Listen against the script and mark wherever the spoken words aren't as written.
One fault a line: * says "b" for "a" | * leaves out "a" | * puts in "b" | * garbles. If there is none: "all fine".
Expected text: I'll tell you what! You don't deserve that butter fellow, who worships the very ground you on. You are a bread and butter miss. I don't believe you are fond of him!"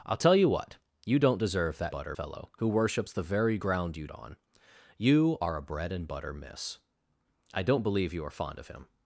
all fine